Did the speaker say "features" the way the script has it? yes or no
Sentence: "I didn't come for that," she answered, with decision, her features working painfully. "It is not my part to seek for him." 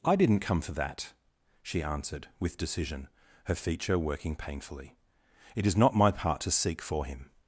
no